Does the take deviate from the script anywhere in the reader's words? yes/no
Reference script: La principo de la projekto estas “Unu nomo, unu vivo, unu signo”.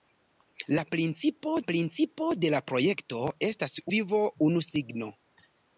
yes